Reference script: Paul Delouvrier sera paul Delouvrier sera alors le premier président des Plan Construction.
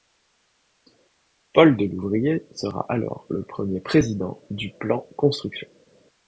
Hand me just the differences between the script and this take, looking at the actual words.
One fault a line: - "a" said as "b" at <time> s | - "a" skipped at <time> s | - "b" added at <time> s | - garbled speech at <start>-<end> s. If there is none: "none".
- "paul Delouvrier sera" skipped at 2.8 s
- "des" said as "du" at 4.5 s